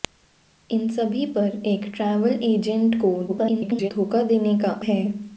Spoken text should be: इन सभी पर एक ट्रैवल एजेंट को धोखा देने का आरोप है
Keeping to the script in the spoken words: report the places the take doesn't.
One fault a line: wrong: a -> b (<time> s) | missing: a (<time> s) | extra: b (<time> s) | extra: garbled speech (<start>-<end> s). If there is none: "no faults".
extra: garbled speech (3.3-3.9 s)
missing: आरोप (4.7 s)